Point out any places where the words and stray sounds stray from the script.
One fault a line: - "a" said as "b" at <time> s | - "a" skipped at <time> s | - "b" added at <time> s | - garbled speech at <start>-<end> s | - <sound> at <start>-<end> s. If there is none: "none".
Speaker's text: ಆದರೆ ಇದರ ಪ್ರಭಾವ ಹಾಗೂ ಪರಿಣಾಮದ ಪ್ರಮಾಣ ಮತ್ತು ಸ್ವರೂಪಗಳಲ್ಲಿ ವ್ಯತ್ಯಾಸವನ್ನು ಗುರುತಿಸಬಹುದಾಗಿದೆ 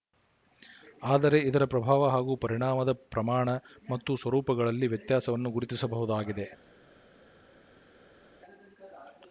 none